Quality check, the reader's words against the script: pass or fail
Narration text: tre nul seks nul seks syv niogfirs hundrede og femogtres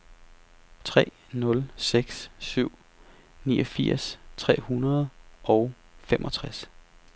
fail